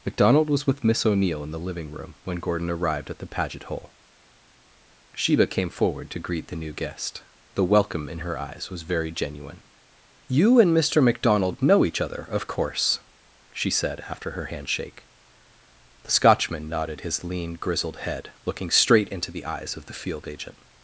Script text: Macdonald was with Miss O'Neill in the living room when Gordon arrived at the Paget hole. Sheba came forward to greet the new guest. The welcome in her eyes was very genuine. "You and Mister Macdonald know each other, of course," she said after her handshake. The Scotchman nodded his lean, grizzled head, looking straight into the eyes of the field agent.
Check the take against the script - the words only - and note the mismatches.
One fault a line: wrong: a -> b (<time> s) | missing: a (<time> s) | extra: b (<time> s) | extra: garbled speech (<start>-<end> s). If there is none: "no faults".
no faults